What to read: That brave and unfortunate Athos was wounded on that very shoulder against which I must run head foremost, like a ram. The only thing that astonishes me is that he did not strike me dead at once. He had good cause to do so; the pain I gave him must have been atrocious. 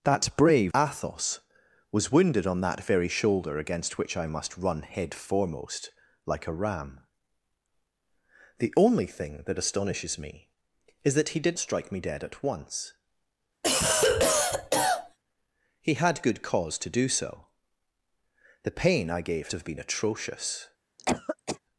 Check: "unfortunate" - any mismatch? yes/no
yes